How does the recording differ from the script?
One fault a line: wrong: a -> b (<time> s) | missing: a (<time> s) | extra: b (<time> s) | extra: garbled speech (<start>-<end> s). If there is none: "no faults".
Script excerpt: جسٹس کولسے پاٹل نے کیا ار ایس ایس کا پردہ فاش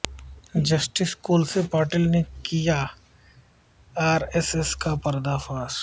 no faults